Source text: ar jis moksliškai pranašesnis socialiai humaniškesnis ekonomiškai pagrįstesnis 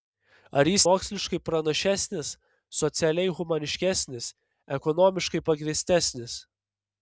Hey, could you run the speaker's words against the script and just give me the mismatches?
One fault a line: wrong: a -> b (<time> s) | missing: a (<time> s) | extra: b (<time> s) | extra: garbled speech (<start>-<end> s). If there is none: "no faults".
no faults